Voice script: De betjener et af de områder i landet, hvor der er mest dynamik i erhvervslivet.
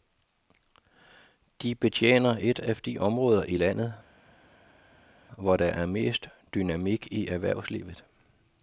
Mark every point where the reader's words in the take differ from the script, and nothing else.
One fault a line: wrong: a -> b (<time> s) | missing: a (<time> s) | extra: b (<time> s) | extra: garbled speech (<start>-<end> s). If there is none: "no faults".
no faults